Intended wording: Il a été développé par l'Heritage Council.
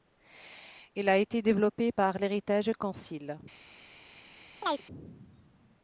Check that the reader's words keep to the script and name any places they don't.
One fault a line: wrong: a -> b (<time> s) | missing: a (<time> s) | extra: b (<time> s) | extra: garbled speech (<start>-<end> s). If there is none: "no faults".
no faults